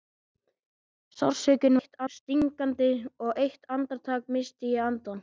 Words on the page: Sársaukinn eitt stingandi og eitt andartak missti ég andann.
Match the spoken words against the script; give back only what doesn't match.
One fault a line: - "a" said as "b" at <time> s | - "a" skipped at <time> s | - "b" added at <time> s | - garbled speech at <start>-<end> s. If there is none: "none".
none